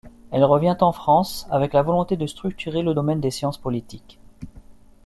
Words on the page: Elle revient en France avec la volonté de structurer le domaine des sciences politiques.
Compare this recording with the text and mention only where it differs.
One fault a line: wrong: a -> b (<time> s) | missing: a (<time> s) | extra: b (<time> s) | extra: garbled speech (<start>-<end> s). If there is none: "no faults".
no faults